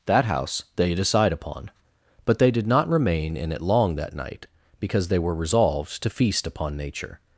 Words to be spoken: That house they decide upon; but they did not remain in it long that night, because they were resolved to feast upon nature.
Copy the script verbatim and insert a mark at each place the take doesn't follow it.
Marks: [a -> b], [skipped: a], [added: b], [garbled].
That house they decide upon; but they did not remain in it long that night, because they were resolved to feast upon nature.